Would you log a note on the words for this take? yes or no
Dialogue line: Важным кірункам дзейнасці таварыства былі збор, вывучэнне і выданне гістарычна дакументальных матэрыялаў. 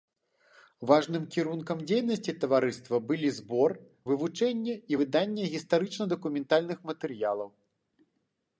no